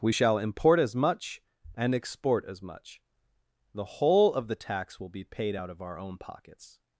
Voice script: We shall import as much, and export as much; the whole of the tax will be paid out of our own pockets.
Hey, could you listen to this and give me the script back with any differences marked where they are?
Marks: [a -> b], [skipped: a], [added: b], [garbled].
We shall import as much, and export as much; the whole of the tax will be paid out of our own pockets.